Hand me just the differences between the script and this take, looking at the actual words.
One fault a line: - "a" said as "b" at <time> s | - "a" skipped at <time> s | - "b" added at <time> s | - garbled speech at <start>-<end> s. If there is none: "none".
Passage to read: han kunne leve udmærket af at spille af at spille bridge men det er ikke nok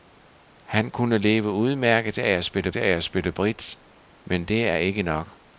none